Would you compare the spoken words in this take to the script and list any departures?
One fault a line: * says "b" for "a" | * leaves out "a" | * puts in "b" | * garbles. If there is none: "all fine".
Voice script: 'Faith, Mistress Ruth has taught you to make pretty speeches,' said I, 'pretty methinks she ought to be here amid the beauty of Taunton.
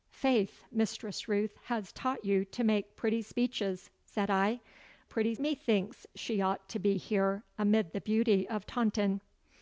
all fine